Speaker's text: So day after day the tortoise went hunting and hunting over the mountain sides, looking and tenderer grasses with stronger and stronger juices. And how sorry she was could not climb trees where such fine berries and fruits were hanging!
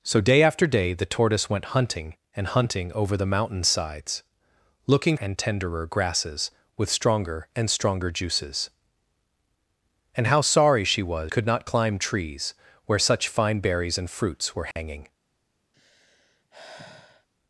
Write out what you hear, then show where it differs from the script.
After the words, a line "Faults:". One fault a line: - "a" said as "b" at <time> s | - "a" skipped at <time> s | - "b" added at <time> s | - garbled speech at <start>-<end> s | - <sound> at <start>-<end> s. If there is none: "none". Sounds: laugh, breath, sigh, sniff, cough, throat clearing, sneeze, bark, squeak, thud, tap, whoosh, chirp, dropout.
So day after day the tortoise went hunting and hunting over the mountain sides, looking and tenderer grasses with stronger and stronger juices. And how sorry she was could not climb trees where such fine berries and fruits were hanging!
Faults:
- dropout at 14.7-14.8 s
- sigh at 15.7-17.3 s